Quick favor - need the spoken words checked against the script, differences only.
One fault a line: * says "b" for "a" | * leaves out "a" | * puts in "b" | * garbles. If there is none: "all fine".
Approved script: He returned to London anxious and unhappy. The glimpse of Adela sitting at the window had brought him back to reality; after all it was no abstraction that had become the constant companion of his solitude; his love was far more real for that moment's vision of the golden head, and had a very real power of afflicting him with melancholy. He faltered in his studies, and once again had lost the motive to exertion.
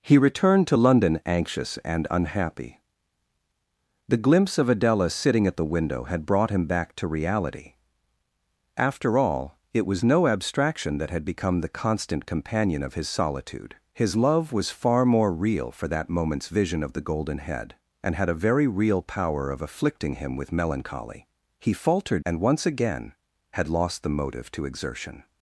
* leaves out "in his studies"